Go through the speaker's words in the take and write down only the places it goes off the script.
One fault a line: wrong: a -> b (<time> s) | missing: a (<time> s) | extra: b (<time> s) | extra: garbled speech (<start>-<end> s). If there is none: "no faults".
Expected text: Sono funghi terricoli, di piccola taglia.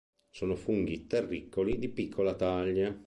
no faults